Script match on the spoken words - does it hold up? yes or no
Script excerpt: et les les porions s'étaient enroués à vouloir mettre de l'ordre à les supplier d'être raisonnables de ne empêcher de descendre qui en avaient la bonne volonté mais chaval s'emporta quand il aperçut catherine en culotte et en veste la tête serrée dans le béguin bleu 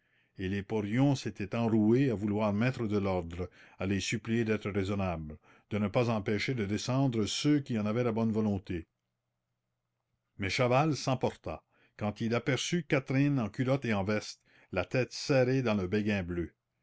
no